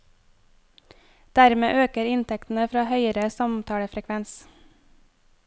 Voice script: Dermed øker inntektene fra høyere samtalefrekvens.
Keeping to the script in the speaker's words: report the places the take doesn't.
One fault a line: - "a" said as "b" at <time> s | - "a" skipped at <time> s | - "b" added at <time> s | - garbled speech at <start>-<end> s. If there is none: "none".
none